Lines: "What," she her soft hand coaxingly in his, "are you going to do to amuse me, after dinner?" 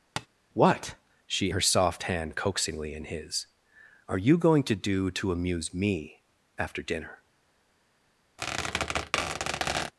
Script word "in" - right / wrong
right